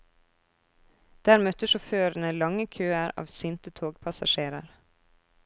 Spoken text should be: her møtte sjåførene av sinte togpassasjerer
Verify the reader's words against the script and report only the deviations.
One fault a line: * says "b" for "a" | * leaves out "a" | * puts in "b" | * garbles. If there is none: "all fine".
* says "der" for "her"
* puts in "lange køer"